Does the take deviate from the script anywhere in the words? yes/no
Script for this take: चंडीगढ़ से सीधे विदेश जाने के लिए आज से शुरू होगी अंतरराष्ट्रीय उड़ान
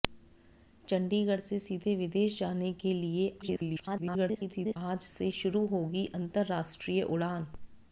yes